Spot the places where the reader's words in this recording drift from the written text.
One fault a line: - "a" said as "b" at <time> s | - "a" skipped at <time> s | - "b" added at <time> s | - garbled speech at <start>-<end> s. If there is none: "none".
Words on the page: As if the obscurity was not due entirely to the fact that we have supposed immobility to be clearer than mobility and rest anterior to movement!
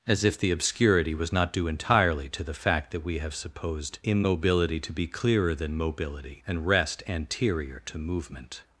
none